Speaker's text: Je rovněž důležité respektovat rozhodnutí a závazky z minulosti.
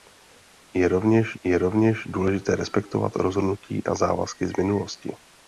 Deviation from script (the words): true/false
true